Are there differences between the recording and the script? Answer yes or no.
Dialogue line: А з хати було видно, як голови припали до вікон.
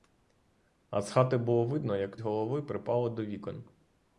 no